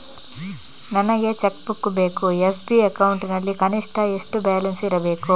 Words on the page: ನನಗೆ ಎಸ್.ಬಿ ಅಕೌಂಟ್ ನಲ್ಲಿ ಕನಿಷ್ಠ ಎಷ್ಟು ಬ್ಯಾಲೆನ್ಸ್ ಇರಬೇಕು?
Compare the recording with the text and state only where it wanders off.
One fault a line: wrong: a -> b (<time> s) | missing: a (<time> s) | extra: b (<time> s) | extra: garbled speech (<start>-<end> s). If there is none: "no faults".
extra: ಚೆಕ್ ಬುಕ್ ಬೇಕು (1.3 s)